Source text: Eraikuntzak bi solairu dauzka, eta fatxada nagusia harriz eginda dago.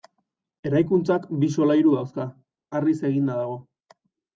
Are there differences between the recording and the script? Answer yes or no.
yes